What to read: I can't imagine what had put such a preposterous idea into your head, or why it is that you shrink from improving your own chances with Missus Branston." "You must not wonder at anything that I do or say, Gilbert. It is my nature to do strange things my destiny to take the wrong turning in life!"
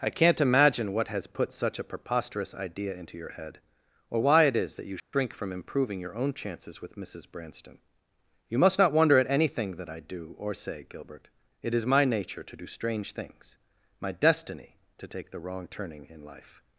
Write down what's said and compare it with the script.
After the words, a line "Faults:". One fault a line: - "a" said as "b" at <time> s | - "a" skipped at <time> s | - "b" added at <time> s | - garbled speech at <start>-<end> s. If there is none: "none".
I can't imagine what has put such a preposterous idea into your head, or why it is that you shrink from improving your own chances with Missus Branston." "You must not wonder at anything that I do or say, Gilbert. It is my nature to do strange things my destiny to take the wrong turning in life!"
Faults:
- "had" said as "has" at 1.1 s